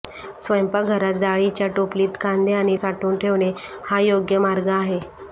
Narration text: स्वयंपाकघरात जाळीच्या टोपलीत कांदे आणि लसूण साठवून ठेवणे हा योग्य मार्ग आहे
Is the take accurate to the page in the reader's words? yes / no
no